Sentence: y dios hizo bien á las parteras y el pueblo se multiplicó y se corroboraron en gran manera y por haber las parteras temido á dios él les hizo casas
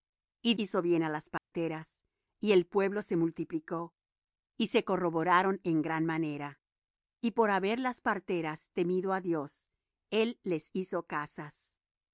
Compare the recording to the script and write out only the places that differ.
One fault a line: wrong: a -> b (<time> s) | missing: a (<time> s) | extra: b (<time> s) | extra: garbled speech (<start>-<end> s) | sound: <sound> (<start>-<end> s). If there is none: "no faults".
missing: dios (0.6 s)
sound: dropout (1.4-1.5 s)